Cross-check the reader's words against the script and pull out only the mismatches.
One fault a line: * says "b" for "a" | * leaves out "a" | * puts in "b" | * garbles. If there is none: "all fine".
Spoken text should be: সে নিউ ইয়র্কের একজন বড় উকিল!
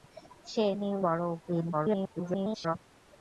* leaves out "ইয়র্কের একজন"
* garbles